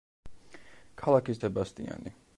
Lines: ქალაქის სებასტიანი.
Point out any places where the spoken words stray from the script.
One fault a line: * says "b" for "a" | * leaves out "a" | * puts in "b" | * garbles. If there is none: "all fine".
all fine